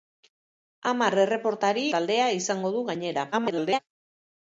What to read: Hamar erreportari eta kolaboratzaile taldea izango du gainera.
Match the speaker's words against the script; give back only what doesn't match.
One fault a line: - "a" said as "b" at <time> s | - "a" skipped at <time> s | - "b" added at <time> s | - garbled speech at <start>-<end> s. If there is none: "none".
- "eta kolaboratzaile" skipped at 1.8 s
- garbled speech at 3.3-3.8 s